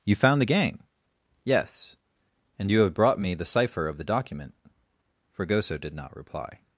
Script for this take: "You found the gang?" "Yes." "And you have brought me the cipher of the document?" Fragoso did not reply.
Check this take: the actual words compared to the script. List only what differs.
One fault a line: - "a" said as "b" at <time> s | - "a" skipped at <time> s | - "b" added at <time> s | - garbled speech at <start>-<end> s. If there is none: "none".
none